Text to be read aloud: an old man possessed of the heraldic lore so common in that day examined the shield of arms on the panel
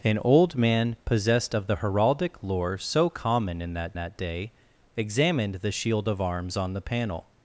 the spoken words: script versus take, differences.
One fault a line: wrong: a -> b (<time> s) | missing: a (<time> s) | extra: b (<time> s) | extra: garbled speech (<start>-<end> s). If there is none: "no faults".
extra: that (4.0 s)